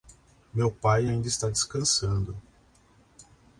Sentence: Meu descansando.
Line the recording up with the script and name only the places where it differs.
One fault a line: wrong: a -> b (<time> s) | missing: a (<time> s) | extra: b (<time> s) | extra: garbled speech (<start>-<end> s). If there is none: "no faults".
extra: pai ainda está (0.7 s)